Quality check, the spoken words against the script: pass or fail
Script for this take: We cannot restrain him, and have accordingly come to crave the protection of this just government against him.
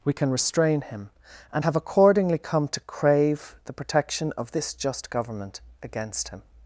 fail